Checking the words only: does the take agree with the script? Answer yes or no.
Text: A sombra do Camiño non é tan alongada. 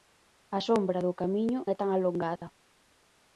no